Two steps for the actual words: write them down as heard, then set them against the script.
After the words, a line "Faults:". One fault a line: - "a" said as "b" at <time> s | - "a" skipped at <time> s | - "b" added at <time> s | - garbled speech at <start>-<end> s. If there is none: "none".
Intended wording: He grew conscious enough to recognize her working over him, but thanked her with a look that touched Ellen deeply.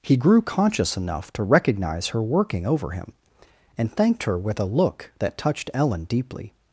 He grew conscious enough to recognize her working over him, and thanked her with a look that touched Ellen deeply.
Faults:
- "but" said as "and" at 3.8 s